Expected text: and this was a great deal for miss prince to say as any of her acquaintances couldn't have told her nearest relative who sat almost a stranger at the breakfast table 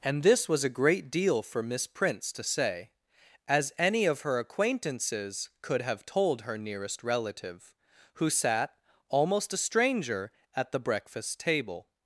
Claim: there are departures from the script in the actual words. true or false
true